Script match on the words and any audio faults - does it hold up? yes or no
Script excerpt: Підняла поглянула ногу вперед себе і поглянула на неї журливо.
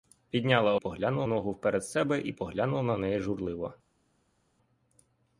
yes